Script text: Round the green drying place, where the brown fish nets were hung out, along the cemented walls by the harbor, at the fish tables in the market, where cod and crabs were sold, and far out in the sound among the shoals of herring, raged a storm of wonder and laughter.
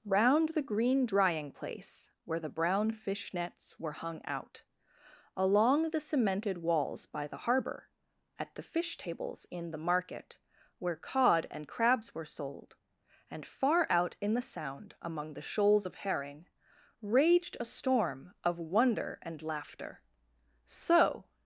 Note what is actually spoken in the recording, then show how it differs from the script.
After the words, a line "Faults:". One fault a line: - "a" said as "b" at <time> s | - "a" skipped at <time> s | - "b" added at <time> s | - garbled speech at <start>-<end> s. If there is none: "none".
Round the green drying place, where the brown fish nets were hung out, along the cemented walls by the harbor, at the fish tables in the market, where cod and crabs were sold, and far out in the sound among the shoals of herring, raged a storm of wonder and laughter. "So
Faults:
- "So" added at 20.7 s